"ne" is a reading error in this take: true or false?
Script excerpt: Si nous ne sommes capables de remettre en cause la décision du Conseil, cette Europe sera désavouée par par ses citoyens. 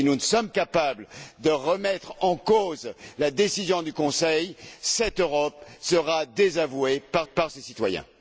false